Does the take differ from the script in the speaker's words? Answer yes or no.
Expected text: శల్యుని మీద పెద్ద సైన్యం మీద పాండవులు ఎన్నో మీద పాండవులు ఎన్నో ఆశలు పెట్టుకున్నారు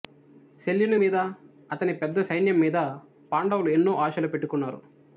yes